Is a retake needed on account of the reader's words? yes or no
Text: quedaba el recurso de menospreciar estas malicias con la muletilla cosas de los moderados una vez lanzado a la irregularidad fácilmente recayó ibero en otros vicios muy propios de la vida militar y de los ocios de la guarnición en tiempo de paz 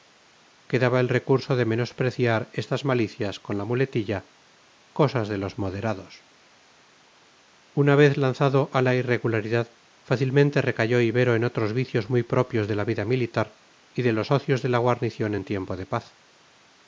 no